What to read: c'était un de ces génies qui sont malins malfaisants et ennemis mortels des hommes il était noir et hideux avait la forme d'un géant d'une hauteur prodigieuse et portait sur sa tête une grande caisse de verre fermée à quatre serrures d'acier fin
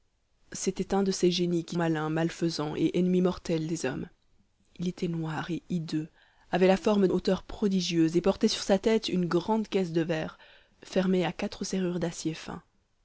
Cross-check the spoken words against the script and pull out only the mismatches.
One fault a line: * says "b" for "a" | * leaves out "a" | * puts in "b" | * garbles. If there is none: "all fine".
* leaves out "sont"
* leaves out "d'un géant d'une"